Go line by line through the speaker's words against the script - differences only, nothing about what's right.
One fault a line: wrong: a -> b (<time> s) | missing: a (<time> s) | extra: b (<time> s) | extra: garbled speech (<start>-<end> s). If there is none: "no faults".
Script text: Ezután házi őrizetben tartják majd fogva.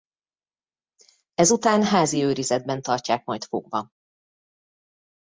no faults